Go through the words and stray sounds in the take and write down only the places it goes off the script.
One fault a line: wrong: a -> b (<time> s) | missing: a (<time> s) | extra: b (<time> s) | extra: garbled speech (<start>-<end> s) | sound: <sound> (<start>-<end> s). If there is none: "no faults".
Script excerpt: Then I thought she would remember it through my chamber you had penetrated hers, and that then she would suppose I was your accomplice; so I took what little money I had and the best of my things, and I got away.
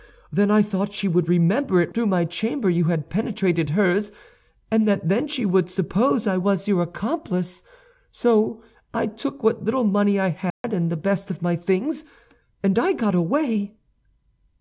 sound: dropout (10.5-10.6 s)